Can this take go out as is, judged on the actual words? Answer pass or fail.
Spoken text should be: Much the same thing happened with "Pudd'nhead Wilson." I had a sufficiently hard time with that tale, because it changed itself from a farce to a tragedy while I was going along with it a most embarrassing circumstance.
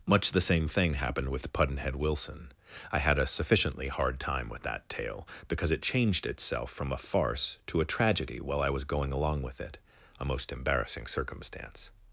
pass